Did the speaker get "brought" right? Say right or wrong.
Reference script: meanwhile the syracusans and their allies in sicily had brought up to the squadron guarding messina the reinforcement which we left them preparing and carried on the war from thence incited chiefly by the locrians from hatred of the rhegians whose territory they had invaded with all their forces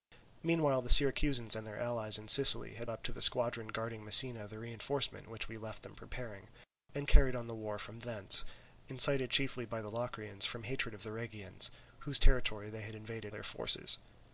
wrong